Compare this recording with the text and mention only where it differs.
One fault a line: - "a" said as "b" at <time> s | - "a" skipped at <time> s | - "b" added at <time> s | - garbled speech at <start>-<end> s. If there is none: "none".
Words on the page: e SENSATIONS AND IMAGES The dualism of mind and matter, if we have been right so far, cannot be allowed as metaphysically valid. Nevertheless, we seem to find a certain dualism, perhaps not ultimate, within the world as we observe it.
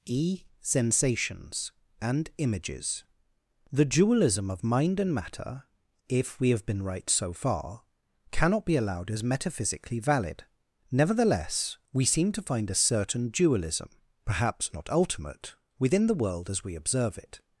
none